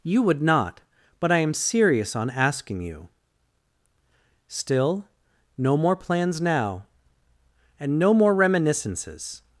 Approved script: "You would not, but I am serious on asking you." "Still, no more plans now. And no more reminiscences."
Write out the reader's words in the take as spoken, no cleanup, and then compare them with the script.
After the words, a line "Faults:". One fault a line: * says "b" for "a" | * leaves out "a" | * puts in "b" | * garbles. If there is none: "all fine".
"You would not, but I am serious on asking you." "Still, no more plans now. And no more reminiscences."
Faults:
all fine